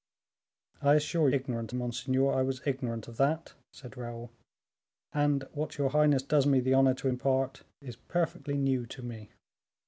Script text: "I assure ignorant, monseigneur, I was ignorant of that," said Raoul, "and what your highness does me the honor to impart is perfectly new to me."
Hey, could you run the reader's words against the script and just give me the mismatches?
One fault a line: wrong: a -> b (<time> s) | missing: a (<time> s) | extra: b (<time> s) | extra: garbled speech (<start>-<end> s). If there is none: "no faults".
no faults